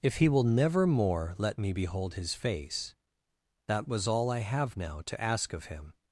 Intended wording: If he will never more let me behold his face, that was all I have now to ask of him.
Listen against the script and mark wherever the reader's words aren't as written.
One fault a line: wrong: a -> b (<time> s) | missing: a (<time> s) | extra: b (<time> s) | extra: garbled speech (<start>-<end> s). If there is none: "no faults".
no faults